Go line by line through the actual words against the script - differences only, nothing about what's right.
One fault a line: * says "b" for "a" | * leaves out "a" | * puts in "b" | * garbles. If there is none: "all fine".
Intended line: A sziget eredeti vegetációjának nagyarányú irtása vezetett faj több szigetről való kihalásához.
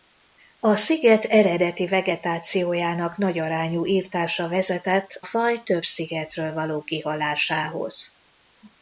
all fine